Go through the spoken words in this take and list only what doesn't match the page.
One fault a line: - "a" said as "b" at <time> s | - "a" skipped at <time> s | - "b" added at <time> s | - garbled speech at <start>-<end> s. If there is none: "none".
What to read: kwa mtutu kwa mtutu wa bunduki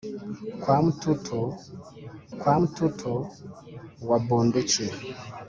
none